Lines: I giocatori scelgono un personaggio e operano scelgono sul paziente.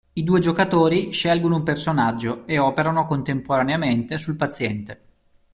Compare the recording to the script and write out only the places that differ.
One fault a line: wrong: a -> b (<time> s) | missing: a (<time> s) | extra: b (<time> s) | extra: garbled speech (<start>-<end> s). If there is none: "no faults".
extra: due (0.2 s)
wrong: scelgono -> contemporaneamente (3.0 s)